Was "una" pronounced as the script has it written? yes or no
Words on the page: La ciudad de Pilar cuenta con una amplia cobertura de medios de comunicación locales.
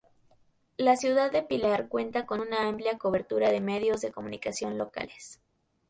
yes